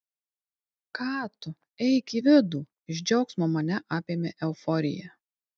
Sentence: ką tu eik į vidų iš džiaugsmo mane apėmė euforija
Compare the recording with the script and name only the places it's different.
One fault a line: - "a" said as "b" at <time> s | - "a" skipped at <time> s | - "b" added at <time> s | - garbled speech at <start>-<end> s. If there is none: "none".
none